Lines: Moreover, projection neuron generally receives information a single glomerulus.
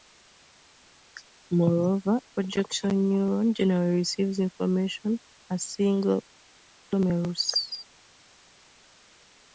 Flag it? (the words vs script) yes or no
no